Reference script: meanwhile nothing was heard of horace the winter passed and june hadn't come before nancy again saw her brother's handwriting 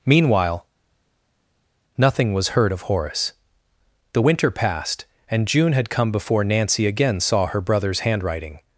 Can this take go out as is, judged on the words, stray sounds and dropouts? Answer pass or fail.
fail